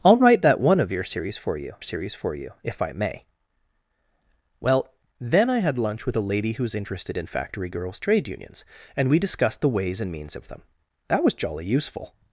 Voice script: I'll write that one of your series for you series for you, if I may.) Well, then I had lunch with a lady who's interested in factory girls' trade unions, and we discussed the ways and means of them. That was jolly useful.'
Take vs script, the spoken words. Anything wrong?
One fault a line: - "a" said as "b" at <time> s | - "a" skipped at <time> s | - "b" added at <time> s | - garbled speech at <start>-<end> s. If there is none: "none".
none